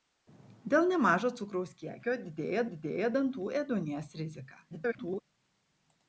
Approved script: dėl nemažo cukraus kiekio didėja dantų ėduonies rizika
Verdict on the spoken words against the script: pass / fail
fail